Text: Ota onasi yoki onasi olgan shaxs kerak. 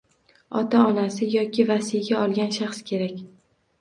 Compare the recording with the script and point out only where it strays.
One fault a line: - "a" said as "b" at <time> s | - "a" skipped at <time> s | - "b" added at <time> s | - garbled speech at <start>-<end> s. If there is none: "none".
- "onasi" said as "vasiyga" at 1.7 s